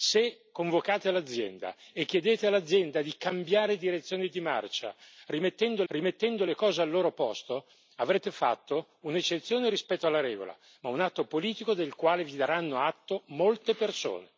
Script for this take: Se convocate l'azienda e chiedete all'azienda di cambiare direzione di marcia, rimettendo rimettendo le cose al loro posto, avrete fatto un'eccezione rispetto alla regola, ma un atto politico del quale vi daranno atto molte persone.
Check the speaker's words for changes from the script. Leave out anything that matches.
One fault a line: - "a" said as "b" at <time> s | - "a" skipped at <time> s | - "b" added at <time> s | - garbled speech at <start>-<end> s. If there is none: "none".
none